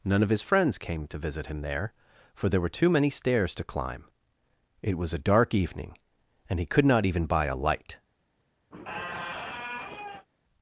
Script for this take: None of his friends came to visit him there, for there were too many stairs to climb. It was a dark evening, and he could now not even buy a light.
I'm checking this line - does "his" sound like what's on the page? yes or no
yes